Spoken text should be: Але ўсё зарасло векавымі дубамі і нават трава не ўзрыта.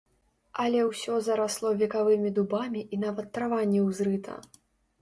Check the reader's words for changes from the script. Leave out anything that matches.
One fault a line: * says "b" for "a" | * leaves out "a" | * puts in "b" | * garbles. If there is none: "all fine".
all fine